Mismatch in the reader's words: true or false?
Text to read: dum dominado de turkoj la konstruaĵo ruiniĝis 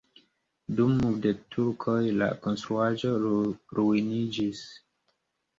true